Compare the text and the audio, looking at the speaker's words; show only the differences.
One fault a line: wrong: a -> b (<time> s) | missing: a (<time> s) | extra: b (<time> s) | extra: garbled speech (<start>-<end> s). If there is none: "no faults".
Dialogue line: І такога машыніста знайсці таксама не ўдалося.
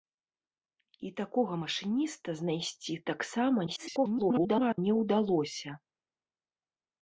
extra: garbled speech (3.7-4.8 s)